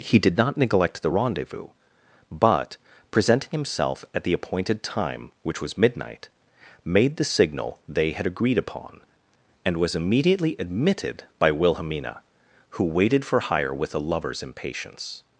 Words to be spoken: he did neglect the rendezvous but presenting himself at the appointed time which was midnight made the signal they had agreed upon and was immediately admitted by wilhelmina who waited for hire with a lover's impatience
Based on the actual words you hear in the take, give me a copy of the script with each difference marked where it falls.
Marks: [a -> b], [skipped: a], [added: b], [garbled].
he did [added: not] neglect the rendezvous but presenting himself at the appointed time which was midnight made the signal they had agreed upon and was immediately admitted by wilhelmina who waited for hire with a lover's impatience